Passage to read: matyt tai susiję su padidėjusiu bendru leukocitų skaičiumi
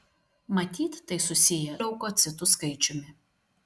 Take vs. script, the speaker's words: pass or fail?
fail